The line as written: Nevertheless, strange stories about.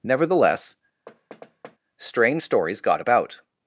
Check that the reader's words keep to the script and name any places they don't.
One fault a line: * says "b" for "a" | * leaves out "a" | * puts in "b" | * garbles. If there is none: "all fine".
* puts in "got"